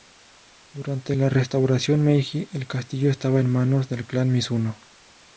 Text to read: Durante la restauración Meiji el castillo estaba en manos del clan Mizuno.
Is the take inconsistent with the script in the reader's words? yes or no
no